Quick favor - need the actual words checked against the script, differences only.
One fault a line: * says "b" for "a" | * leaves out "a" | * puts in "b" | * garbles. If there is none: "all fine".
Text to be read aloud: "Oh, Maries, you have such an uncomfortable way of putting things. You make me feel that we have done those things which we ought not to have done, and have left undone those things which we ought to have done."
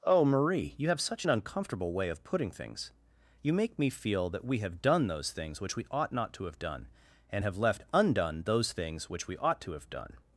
* says "Marie" for "Maries"